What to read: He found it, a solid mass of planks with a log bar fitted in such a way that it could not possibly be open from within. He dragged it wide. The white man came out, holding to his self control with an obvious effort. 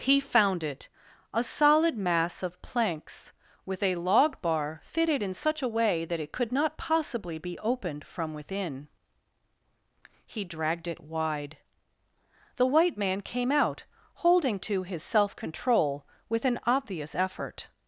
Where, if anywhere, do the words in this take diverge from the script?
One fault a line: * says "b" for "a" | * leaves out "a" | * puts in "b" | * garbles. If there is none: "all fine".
* says "opened" for "open"